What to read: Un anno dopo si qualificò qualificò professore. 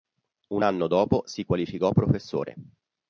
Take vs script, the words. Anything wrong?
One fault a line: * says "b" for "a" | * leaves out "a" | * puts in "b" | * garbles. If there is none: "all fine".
* leaves out "qualificò"